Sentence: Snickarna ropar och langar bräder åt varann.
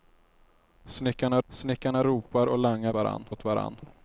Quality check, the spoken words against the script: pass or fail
fail